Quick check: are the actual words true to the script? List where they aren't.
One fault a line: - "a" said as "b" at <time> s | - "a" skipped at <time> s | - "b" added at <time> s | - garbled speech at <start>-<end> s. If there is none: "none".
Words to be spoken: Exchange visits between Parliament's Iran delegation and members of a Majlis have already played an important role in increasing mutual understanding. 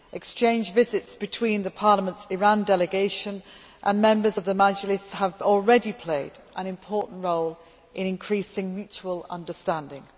- "a" said as "the" at 4.4 s